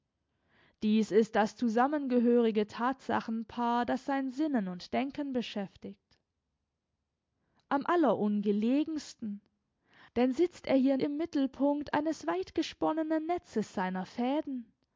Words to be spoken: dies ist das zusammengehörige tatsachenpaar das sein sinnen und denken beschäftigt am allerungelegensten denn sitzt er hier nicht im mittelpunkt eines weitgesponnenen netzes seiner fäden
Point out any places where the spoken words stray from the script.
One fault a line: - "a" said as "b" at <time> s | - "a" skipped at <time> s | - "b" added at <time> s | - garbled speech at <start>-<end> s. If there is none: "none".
- "nicht" skipped at 11.0 s